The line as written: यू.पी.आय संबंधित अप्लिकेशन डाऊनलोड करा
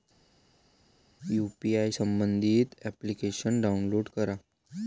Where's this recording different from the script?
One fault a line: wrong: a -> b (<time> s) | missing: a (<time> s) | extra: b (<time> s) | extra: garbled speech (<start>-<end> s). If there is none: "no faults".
no faults